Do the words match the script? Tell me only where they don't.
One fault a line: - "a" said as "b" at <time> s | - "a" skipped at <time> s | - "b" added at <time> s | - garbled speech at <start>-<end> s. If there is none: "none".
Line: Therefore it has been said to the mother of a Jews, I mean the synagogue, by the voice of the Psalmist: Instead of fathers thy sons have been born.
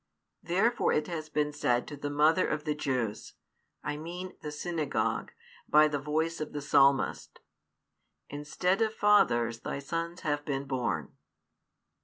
- "a" said as "the" at 2.6 s